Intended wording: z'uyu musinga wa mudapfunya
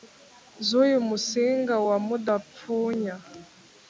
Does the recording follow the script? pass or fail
pass